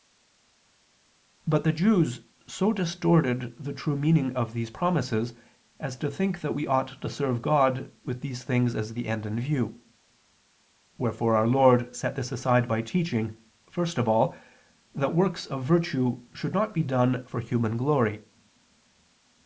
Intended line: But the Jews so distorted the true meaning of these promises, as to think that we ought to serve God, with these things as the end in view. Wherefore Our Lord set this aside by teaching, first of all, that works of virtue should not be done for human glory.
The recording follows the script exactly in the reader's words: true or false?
true